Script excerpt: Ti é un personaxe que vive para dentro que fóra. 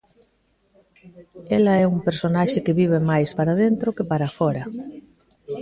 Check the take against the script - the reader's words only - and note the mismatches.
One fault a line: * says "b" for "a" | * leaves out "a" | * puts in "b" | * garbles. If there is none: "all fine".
* says "Ela" for "Ti"
* puts in "máis"
* puts in "para"